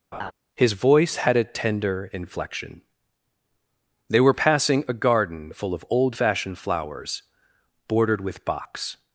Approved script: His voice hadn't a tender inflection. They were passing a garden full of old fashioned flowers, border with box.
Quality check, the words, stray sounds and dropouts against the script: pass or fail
fail